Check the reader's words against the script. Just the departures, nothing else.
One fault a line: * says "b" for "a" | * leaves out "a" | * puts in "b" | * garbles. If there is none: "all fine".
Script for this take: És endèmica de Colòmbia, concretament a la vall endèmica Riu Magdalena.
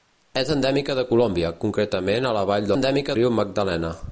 all fine